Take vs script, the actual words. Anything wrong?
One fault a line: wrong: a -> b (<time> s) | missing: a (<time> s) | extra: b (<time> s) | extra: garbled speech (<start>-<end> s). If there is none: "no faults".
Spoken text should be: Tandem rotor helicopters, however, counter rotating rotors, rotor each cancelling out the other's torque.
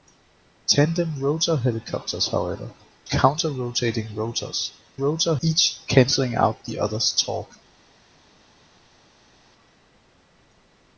no faults